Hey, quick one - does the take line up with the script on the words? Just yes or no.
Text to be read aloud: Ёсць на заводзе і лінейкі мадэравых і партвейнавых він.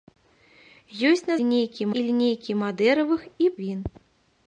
no